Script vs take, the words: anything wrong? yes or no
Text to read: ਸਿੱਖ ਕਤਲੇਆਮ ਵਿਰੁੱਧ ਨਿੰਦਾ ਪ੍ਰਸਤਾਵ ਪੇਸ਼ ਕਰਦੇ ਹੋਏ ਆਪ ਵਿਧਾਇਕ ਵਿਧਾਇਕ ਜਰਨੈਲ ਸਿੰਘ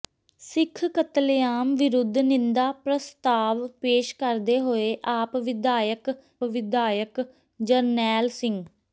no